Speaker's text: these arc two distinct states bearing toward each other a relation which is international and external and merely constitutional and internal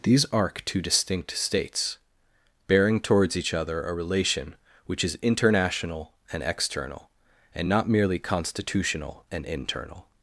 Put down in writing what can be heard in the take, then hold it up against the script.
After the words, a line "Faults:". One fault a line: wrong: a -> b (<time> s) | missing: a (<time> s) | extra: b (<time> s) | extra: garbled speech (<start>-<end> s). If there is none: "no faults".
these arc two distinct states bearing towards each other a relation which is international and external and not merely constitutional and internal
Faults:
wrong: toward -> towards (3.0 s)
extra: not (7.7 s)